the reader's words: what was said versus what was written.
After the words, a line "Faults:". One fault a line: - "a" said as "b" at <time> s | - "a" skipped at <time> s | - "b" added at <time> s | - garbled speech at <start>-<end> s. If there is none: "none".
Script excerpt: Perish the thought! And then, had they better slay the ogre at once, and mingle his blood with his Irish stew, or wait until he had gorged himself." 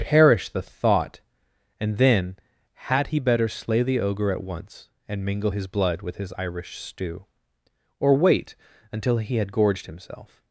Perish the thought! And then, had he better slay the ogre at once, and mingle his blood with his Irish stew, or wait until he had gorged himself."
Faults:
- "they" said as "he" at 3.1 s